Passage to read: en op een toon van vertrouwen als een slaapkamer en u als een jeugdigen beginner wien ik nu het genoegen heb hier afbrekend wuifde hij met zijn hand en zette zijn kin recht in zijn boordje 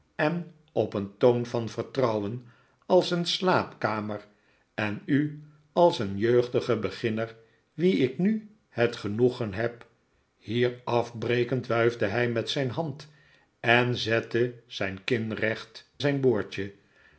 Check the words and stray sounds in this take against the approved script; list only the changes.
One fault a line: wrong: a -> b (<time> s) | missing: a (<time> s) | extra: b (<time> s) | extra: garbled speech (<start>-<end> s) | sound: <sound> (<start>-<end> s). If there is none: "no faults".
missing: in (15.9 s)